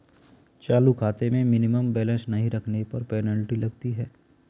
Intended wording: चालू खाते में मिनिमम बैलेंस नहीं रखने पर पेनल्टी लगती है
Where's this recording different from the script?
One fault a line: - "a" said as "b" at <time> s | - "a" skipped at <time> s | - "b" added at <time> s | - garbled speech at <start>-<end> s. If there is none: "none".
none